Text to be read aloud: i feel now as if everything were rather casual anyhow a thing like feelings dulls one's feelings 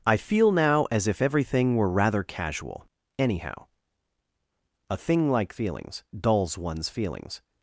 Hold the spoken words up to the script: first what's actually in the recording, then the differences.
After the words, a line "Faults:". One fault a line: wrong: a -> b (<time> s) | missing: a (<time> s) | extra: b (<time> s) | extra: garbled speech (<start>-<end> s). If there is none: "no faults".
i feel now as if everything were rather casual anyhow a thing like feelings dulls one's feelings
Faults:
no faults